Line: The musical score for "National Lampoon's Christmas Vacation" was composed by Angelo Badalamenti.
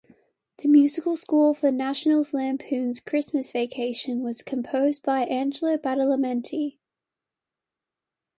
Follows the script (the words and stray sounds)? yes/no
yes